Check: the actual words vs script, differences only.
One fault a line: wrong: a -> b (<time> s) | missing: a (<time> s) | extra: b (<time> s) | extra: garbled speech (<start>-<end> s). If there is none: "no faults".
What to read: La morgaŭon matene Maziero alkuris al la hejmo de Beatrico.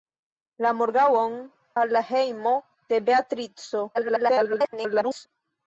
missing: matene Maziero alkuris (1.4 s)
extra: garbled speech (3.9-5.3 s)